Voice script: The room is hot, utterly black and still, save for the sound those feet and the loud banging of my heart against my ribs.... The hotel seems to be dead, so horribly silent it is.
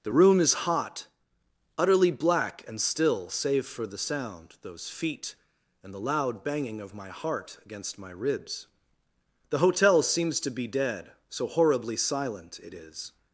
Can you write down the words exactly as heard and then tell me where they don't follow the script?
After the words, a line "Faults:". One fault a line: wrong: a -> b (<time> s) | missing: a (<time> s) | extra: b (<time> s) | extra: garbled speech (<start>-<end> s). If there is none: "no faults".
The room is hot, utterly black and still, save for the sound those feet and the loud banging of my heart against my ribs.... The hotel seems to be dead, so horribly silent it is.
Faults:
no faults